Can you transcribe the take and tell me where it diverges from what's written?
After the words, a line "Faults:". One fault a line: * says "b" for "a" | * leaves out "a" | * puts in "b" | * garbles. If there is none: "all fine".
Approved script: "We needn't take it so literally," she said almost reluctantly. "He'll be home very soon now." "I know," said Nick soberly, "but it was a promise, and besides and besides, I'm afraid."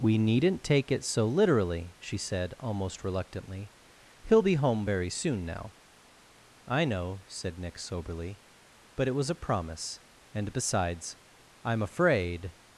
"We needn't take it so literally," she said almost reluctantly. "He'll be home very soon now." "I know," said Nick soberly, "but it was a promise, and besides, I'm afraid."
Faults:
* leaves out "and besides"